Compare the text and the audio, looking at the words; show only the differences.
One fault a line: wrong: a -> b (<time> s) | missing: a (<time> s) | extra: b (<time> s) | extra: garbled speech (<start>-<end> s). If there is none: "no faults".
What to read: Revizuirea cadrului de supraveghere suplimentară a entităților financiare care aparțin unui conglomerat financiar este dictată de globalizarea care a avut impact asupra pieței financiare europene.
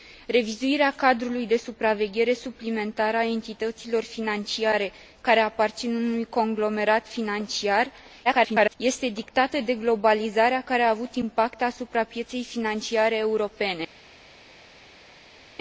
extra: garbled speech (8.2-8.8 s)